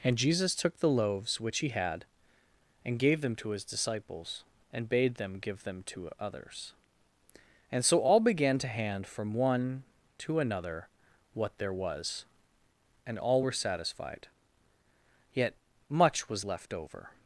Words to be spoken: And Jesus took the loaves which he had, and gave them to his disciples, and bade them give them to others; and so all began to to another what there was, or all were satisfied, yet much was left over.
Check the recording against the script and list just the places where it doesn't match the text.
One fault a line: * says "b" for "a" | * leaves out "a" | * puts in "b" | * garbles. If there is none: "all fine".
* puts in "hand from one"
* says "and" for "or"